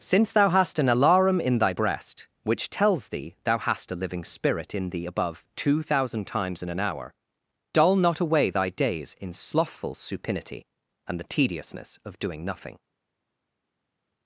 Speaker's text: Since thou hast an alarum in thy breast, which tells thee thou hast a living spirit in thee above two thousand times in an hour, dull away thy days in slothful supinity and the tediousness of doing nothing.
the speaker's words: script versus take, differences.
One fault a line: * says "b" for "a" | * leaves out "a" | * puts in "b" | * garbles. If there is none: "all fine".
* puts in "not"